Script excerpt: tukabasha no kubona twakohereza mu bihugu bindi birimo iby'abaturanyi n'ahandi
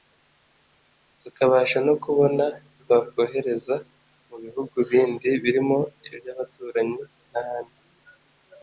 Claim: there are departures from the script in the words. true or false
false